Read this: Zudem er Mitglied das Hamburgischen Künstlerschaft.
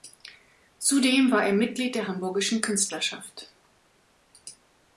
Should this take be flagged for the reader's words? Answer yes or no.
yes